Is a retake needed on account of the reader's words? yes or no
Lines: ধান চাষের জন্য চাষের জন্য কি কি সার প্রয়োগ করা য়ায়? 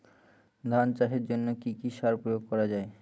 yes